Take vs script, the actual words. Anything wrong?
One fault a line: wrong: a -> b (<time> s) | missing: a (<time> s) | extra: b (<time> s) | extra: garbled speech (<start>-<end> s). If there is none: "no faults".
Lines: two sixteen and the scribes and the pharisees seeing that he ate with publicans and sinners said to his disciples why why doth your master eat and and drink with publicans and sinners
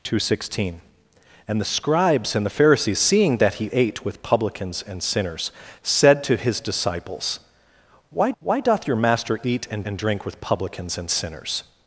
no faults